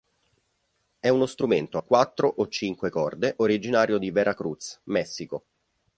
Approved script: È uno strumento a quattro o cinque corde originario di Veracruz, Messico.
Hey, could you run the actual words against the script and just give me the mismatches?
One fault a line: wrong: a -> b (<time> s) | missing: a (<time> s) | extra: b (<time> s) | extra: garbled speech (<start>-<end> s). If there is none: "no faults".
no faults